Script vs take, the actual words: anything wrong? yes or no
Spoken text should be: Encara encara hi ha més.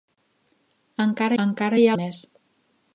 no